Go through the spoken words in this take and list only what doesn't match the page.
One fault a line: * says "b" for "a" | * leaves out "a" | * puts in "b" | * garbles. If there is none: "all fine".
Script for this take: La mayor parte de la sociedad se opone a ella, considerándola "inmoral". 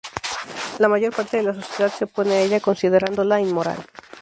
all fine